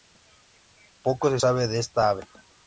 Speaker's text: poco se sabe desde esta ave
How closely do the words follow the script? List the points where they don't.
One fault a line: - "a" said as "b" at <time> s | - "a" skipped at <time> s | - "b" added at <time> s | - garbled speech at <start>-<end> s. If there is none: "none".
- "desde" said as "de" at 1.7 s